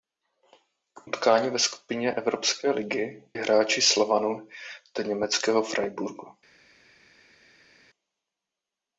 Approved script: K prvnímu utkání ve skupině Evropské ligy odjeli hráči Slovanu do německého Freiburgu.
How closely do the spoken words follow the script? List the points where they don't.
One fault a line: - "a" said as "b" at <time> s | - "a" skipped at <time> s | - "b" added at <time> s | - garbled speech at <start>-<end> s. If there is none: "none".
- "prvnímu" skipped at 1.1 s
- "odjeli" skipped at 3.2 s